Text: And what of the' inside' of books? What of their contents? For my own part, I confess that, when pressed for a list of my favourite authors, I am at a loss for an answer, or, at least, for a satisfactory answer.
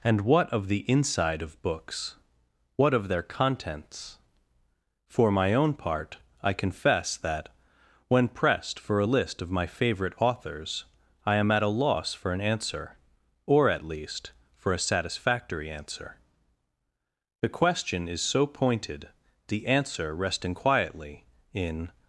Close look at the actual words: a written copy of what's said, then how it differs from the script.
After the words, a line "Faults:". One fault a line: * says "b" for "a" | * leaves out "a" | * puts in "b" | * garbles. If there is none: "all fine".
And what of the' inside' of books? What of their contents? For my own part, I confess that, when pressed for a list of my favourite authors, I am at a loss for an answer, or, at least, for a satisfactory answer. The question is so pointed, the answer resting quietly in
Faults:
* puts in "The question is so pointed the answer resting quietly in"